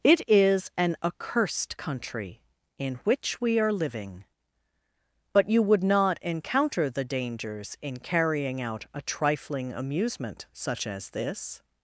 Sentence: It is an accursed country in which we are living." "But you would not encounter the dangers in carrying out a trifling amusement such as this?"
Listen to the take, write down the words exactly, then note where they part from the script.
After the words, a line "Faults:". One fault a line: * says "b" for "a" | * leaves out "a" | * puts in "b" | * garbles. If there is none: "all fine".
It is an accursed country in which we are living." "But you would not encounter the dangers in carrying out a trifling amusement such as this?"
Faults:
all fine